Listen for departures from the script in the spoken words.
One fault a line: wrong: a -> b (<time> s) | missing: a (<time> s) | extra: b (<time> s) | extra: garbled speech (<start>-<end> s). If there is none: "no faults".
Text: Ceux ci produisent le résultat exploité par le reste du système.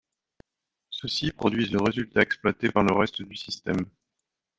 no faults